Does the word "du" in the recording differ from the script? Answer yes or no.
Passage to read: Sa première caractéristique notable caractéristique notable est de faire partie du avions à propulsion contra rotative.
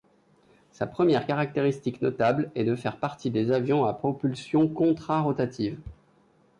yes